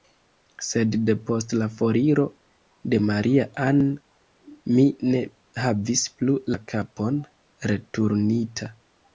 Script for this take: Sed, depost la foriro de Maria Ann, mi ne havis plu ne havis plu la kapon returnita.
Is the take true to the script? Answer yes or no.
no